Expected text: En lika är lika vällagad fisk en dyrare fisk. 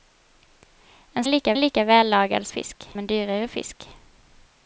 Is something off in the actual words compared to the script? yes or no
no